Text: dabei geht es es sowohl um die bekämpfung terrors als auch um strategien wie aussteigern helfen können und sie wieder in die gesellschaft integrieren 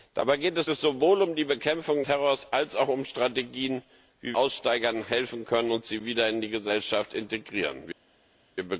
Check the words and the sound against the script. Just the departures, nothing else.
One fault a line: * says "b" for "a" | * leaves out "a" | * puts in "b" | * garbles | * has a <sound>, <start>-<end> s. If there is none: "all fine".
all fine